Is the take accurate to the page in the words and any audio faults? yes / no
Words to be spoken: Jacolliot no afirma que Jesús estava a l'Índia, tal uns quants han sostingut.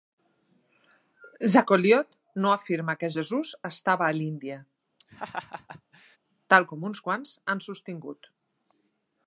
no